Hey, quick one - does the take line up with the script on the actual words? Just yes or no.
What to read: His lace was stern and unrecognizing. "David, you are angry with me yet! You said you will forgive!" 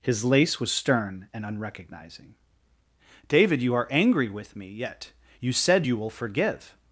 yes